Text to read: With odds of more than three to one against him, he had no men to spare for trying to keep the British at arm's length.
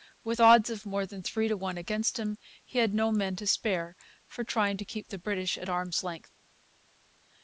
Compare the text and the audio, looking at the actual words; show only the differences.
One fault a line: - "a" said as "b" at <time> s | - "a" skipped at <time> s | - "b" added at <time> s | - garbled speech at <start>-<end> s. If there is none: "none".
none